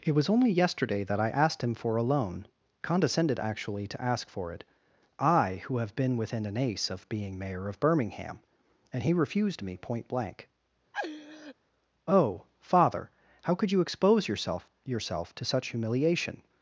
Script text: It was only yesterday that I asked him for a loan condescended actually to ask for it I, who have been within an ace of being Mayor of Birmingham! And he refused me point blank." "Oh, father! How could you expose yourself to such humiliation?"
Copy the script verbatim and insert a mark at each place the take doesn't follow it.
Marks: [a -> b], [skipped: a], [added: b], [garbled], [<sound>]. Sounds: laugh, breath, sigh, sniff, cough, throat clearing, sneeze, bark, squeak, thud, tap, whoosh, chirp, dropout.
It was only yesterday that I asked him for a loan condescended actually to ask for it I, who have been within an ace of being Mayor of Birmingham! And he refused me point blank." [laugh] "Oh, father! How could you expose yourself [added: yourself] to such humiliation?"